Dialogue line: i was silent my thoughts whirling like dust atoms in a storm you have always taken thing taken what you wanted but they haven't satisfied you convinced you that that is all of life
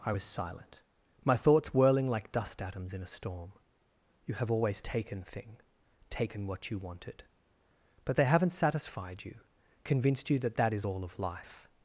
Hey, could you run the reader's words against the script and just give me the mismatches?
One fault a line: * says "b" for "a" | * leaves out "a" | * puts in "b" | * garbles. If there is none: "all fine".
all fine